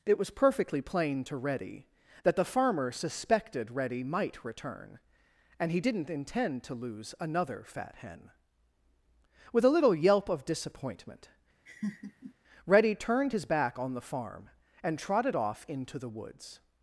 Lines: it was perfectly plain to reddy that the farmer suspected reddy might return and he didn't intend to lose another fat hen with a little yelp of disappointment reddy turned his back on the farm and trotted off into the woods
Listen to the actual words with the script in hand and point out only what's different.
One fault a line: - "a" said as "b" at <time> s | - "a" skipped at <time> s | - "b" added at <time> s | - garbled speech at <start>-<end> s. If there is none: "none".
none